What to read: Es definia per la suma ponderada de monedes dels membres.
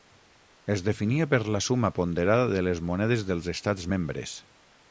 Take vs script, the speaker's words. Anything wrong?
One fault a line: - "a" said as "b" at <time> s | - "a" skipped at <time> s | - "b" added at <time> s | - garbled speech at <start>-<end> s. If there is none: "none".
- "les" added at 2.6 s
- "estats" added at 3.5 s